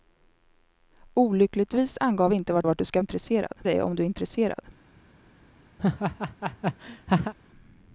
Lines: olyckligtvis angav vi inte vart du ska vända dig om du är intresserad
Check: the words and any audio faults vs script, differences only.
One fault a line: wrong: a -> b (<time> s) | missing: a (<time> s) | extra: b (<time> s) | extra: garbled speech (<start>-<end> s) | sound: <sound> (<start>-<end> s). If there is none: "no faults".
extra: vart (2.6 s)
wrong: vända -> intresserad (3.0 s)
sound: laugh (5.8-7.3 s)